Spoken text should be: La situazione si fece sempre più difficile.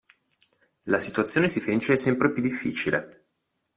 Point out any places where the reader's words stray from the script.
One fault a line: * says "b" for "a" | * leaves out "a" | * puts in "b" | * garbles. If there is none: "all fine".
all fine